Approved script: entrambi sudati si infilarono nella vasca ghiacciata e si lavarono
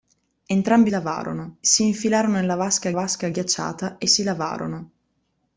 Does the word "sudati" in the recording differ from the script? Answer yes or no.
yes